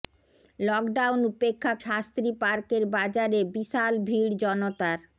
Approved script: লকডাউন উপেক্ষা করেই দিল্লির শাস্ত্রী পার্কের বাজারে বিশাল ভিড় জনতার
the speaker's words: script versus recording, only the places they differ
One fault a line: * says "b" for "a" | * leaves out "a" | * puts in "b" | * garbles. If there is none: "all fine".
* leaves out "করেই দিল্লির"